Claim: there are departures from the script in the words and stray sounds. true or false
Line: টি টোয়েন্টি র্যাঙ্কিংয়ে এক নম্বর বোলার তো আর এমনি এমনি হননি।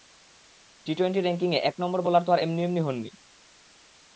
false